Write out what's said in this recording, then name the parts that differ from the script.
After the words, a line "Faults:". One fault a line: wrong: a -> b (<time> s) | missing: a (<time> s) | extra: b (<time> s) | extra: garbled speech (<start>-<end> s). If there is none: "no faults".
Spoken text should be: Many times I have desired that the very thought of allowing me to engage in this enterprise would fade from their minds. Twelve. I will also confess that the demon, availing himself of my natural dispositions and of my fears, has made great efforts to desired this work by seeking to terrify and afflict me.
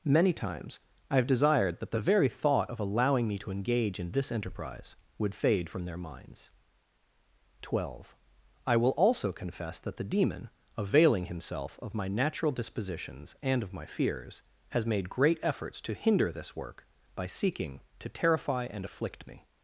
Many times I have desired that the very thought of allowing me to engage in this enterprise would fade from their minds. Twelve. I will also confess that the demon, availing himself of my natural dispositions and of my fears, has made great efforts to hinder this work by seeking to terrify and afflict me.
Faults:
wrong: desired -> hinder (15.9 s)